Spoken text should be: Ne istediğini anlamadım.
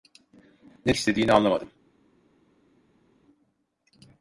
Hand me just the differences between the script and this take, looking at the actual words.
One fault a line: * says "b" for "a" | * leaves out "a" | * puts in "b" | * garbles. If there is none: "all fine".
all fine